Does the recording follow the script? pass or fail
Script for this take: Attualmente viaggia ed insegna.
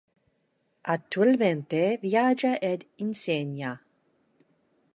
pass